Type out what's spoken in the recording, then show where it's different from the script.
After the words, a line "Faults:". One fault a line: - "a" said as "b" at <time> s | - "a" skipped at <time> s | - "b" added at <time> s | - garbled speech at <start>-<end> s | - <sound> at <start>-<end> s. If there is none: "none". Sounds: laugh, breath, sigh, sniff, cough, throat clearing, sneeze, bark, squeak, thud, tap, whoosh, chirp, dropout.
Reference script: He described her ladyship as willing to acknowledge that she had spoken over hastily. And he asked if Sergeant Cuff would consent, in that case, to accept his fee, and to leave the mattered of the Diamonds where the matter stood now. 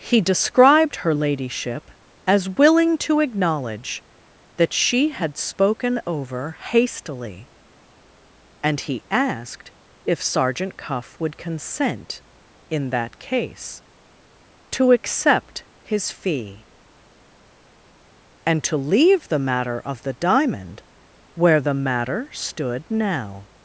He described her ladyship as willing to acknowledge that she had spoken over hastily. And he asked if Sergeant Cuff would consent, in that case, to accept his fee, and to leave the matter of the Diamond where the matter stood now.
Faults:
- "mattered" said as "matter" at 19.4 s
- "Diamonds" said as "Diamond" at 20.1 s